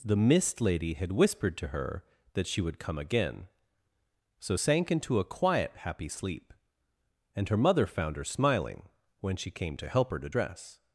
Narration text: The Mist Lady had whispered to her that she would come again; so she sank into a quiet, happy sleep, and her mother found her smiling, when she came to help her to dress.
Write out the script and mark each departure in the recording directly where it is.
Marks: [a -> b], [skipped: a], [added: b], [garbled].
The Mist Lady had whispered to her that she would come again; so [skipped: she] sank into a quiet, happy sleep, and her mother found her smiling, when she came to help her to dress.